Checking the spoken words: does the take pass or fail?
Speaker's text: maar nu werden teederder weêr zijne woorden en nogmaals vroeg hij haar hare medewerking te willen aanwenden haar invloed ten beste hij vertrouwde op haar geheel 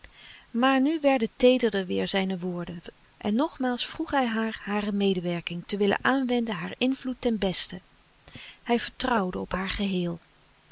pass